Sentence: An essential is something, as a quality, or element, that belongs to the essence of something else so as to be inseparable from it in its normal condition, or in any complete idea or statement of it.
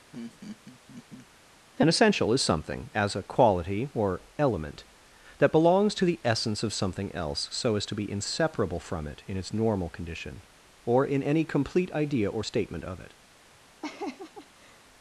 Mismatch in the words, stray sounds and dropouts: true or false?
true